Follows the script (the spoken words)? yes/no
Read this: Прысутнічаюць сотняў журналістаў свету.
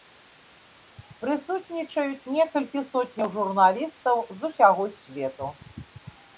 no